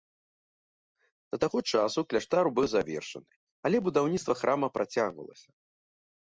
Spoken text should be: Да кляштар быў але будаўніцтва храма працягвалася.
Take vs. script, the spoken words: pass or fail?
fail